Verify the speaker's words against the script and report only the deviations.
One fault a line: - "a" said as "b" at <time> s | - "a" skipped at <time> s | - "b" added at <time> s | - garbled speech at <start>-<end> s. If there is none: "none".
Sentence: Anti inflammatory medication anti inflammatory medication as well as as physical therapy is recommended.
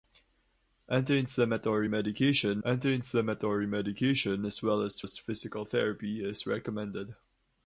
none